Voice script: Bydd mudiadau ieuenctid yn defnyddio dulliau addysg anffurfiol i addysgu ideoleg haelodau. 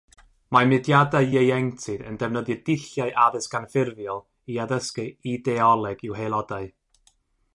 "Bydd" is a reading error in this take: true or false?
true